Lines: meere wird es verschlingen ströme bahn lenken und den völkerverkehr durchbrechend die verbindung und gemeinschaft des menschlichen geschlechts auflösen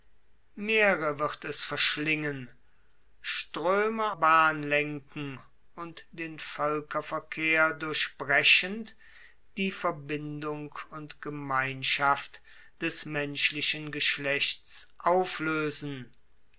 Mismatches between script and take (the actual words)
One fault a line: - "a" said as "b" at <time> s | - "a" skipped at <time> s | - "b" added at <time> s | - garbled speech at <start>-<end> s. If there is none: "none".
none